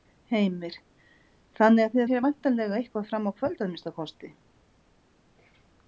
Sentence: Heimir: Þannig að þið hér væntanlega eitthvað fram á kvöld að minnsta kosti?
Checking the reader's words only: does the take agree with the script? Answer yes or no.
yes